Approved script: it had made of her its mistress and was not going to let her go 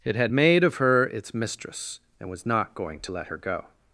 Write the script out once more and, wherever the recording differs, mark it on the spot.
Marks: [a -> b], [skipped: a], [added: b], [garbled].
it had made of her its mistress and was not going to let her go